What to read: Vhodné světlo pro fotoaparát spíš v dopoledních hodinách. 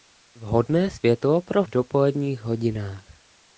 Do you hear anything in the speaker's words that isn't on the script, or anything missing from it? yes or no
yes